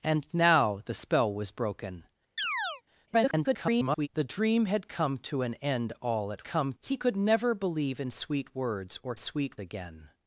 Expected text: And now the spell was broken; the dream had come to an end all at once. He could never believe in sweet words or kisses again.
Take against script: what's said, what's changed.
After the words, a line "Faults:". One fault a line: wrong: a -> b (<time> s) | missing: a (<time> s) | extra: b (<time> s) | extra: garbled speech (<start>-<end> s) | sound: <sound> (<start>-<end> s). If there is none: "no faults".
And now the spell was broken; [garbled] the dream had come to an end all at come. He could never believe in sweet words or sweet again.
Faults:
sound: chirp (2.4-2.8 s)
extra: garbled speech (3.1-4.1 s)
wrong: once -> come (6.4 s)
wrong: kisses -> sweet (9.2 s)